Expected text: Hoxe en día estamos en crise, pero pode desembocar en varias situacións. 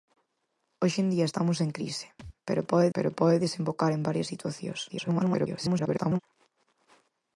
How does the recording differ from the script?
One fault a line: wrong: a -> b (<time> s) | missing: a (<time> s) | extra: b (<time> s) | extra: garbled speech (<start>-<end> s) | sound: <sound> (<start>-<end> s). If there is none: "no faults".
sound: thud (2.2-2.4 s)
extra: pero pode (2.9 s)
extra: garbled speech (4.9-6.2 s)